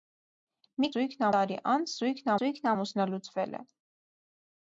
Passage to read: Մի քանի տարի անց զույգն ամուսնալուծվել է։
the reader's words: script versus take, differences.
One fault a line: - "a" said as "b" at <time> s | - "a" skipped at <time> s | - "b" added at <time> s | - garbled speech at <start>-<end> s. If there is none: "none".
- "քանի" said as "զույգն" at 0.9 s
- "զույգն" added at 2.4 s